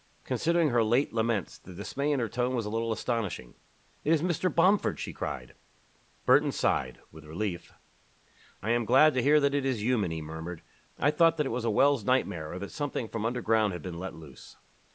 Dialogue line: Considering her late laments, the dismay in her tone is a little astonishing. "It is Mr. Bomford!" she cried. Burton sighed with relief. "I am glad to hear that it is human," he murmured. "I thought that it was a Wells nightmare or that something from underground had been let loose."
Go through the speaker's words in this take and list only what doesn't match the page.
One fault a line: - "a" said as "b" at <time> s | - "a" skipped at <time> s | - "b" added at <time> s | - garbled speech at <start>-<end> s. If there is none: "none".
- "is" said as "was" at 2.5 s